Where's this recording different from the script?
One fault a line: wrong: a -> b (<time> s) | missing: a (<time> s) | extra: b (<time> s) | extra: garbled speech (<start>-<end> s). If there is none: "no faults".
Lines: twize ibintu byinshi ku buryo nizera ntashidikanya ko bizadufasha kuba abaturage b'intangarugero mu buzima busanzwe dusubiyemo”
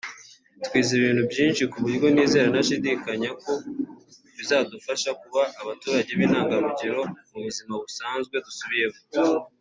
no faults